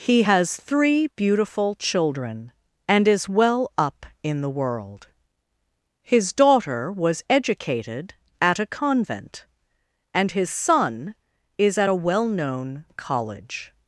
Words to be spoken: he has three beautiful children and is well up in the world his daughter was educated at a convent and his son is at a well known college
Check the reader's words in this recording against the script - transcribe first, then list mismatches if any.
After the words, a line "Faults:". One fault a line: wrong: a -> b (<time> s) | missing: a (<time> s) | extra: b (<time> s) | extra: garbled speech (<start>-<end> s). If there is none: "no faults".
he has three beautiful children and is well up in the world his daughter was educated at a convent and his son is at a well known college
Faults:
no faults